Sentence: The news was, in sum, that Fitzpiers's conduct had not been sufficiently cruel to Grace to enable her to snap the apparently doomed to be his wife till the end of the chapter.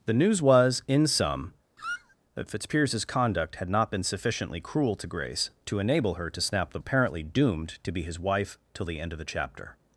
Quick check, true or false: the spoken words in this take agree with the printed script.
true